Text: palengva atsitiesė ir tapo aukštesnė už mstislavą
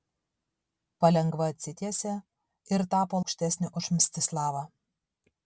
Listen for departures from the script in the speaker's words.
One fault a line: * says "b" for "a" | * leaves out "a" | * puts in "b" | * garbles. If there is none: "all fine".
all fine